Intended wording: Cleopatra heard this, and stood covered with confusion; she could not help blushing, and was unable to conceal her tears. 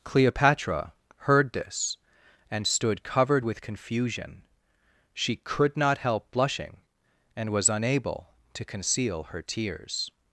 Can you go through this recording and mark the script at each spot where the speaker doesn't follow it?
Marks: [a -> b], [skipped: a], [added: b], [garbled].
Cleopatra heard this, and stood covered with confusion; she could not help blushing, and was unable to conceal her tears.